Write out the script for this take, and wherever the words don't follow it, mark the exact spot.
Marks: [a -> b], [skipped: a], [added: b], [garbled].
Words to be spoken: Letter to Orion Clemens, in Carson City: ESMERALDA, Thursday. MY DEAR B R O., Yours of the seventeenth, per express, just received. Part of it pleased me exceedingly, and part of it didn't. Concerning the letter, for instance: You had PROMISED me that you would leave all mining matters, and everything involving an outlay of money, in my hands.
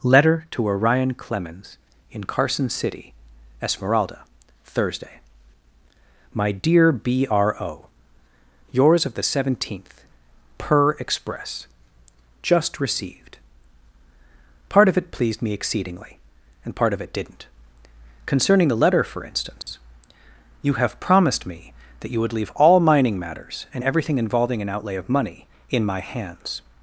Letter to Orion Clemens, in Carson City: ESMERALDA, Thursday. MY DEAR B R O., Yours of the seventeenth, per express, just received. Part of it pleased me exceedingly, and part of it didn't. Concerning the letter, for instance: You [had -> have] PROMISED me that you would leave all mining matters, and everything involving an outlay of money, in my hands.